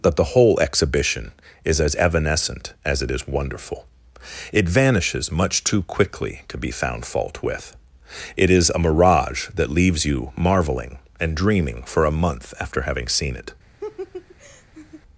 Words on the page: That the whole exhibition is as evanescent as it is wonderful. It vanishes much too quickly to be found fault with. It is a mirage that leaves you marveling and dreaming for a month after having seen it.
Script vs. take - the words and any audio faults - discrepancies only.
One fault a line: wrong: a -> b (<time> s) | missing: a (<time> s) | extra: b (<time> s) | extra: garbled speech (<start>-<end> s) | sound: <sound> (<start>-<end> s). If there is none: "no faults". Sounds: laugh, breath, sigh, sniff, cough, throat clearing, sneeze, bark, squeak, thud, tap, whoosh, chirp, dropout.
sound: laugh (13.8-15.0 s)